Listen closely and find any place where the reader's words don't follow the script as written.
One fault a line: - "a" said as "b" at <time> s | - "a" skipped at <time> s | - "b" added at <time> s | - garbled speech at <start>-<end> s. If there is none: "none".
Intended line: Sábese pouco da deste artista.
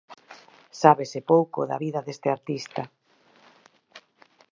- "vida" added at 1.8 s